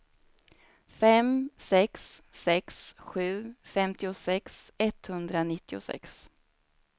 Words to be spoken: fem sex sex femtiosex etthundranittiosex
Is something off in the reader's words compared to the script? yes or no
yes